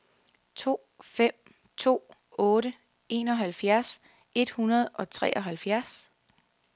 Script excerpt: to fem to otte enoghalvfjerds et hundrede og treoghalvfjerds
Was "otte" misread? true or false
false